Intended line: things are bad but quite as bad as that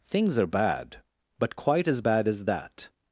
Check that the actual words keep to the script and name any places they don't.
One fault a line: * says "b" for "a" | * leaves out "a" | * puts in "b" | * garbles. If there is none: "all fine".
all fine